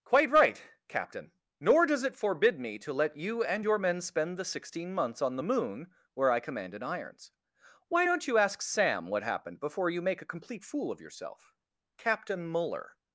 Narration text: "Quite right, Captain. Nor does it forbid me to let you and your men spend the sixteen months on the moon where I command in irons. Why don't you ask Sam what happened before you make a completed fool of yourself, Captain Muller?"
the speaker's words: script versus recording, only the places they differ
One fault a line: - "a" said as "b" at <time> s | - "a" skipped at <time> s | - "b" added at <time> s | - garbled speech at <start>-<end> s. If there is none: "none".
- "completed" said as "complete" at 10.3 s